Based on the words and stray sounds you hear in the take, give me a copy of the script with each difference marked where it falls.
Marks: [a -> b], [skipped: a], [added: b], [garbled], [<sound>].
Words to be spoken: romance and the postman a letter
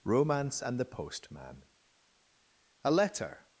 romance and the postman a letter